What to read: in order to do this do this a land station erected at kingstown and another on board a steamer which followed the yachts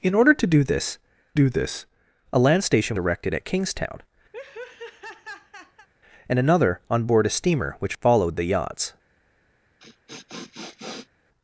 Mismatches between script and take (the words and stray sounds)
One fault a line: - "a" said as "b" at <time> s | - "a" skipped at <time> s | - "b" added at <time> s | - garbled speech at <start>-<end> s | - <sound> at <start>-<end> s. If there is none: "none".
- laugh at 4.3-5.9 s
- sniff at 9.8-11.1 s